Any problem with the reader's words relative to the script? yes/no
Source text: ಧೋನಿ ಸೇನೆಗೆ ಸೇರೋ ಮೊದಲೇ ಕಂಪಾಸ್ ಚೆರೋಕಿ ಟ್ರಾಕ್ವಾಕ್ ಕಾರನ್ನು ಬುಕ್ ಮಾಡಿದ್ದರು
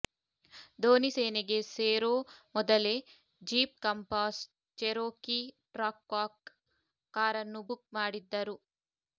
yes